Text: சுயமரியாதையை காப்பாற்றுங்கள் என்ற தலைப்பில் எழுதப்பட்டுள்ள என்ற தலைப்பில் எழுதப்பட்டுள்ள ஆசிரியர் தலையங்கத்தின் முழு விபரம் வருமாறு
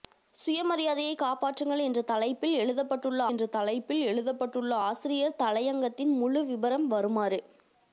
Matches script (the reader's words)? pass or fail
pass